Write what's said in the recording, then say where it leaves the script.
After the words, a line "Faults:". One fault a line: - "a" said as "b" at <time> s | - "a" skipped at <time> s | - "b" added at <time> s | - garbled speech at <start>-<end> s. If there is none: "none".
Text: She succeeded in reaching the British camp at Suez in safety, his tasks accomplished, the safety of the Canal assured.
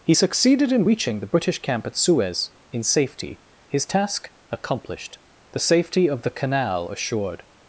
He succeeded in reaching the British camp at Suez in safety, his task accomplished, the safety of the Canal assured.
Faults:
- "She" said as "He" at 0.0 s
- "tasks" said as "task" at 3.8 s